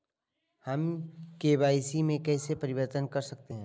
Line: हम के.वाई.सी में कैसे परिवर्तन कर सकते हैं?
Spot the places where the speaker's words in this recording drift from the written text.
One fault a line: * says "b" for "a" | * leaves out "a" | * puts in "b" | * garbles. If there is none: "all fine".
all fine